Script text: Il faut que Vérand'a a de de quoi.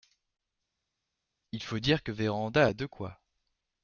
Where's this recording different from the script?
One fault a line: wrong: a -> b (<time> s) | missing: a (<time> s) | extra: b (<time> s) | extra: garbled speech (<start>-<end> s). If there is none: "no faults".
extra: dire (1.8 s)
missing: de (2.9 s)